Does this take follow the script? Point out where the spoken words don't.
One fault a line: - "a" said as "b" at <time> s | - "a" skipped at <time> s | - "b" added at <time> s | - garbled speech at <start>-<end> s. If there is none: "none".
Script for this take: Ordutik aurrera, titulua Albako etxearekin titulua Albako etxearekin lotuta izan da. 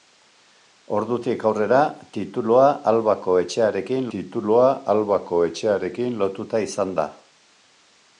none